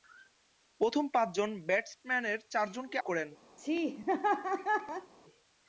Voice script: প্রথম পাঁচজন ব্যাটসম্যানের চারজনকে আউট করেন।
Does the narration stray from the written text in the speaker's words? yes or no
yes